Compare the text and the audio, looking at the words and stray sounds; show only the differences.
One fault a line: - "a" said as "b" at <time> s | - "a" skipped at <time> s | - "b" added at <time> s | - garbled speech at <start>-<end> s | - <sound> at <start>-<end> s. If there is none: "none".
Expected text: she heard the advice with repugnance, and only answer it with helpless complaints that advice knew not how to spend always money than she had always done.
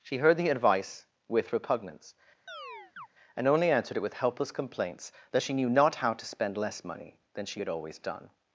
- chirp at 2.5-3.1 s
- "answer" said as "answered" at 3.7 s
- "advice" said as "she" at 5.4 s
- "always" said as "less" at 6.6 s